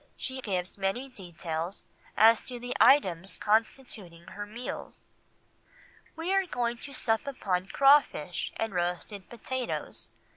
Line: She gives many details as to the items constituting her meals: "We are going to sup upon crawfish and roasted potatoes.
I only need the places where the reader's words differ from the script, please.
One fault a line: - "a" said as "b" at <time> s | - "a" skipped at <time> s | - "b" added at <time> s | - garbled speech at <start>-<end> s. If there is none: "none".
none